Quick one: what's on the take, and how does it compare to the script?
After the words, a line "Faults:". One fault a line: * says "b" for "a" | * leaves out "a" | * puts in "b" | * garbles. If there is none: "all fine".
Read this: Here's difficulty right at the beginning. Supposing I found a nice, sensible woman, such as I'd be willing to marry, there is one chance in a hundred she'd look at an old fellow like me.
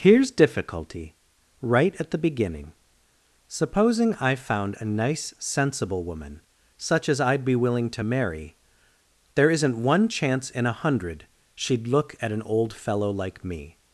Here's difficulty right at the beginning. Supposing I found a nice, sensible woman, such as I'd be willing to marry, there isn't one chance in a hundred she'd look at an old fellow like me.
Faults:
* says "isn't" for "is"